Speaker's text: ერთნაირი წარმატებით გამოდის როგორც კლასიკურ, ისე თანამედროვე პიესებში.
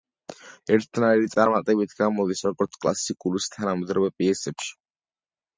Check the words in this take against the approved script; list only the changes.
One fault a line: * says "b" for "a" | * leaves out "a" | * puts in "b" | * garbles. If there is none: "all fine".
all fine